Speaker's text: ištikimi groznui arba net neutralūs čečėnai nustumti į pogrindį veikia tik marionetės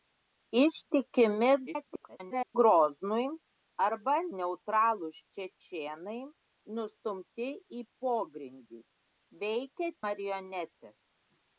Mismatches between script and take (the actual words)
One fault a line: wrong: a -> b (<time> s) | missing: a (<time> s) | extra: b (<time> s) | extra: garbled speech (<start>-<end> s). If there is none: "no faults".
extra: garbled speech (1.7-2.6 s)
missing: net (4.1 s)
missing: tik (9.9 s)